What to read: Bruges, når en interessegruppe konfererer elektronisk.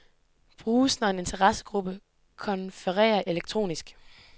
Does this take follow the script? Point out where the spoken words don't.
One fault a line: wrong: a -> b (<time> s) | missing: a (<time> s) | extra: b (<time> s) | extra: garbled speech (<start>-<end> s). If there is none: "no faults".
no faults